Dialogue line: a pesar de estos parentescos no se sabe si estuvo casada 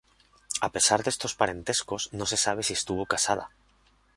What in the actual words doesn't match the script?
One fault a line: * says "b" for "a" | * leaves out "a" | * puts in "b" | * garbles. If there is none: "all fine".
all fine